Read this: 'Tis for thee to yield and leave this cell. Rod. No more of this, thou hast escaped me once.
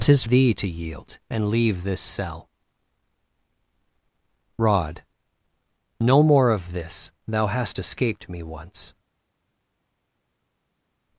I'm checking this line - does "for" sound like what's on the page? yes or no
no